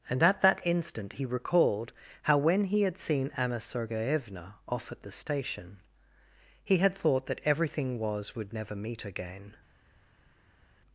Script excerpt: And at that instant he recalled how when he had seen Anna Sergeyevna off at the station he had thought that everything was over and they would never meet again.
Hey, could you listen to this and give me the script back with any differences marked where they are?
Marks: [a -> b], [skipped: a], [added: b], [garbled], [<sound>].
And at that instant he recalled how when he had seen Anna Sergeyevna off at the station he had thought that everything was [skipped: over and they] would never meet again.